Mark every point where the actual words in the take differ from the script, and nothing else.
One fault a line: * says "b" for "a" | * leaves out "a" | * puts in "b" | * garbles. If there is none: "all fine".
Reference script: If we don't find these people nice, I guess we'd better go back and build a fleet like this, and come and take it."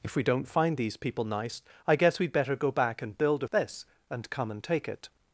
* leaves out "fleet like"